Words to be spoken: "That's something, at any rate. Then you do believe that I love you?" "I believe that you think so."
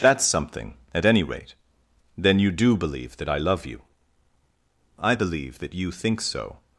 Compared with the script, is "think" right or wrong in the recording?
right